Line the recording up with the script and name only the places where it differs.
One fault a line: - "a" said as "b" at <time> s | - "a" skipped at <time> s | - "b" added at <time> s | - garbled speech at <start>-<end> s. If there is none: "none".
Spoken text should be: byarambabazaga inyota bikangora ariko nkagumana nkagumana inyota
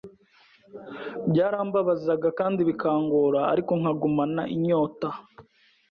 - "inyota" said as "kandi" at 2.4 s
- "nkagumana" skipped at 4.4 s